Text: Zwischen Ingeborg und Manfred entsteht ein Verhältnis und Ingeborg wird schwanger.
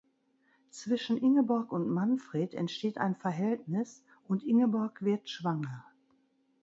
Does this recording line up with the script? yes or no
yes